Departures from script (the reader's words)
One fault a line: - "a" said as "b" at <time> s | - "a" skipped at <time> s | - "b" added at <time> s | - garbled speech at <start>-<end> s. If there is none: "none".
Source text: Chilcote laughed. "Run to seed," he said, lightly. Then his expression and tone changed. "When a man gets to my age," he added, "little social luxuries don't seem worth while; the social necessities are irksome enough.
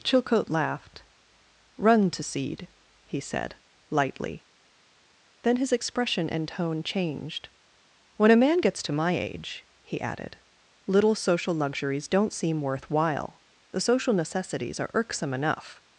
none